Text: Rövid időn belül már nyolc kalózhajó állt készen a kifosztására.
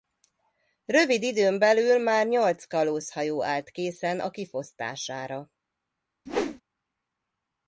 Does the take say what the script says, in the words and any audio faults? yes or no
no